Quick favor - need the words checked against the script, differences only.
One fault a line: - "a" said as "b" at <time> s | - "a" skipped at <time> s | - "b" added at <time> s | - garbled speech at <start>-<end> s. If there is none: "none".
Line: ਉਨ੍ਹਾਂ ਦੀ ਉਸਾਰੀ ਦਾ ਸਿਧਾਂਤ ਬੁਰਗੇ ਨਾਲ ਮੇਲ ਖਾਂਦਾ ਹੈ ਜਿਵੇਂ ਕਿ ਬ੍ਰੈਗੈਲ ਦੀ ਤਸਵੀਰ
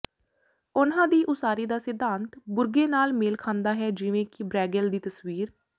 none